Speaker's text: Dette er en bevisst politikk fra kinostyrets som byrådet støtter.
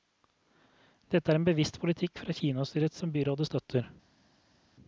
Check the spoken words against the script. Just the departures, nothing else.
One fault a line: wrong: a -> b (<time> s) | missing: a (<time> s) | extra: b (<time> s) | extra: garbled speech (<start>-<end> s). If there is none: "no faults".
no faults